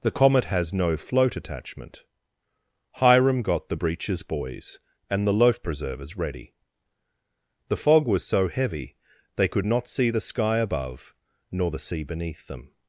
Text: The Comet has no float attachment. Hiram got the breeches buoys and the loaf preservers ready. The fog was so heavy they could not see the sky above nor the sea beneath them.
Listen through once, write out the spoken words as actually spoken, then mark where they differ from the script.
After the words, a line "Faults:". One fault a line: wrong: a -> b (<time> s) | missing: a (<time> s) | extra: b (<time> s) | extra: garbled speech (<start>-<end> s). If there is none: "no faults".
The Comet has no float attachment. Hiram got the breeches buoys and the loaf preservers ready. The fog was so heavy they could not see the sky above nor the sea beneath them.
Faults:
no faults